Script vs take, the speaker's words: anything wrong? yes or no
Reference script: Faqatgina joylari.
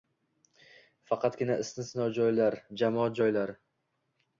yes